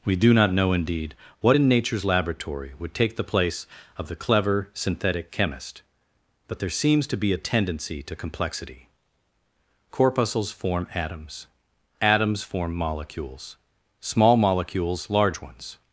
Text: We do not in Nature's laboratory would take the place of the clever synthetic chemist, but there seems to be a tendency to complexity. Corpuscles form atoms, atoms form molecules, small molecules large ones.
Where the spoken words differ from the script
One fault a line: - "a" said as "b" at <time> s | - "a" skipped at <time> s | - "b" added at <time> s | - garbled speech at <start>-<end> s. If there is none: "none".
- "know indeed what" added at 0.5 s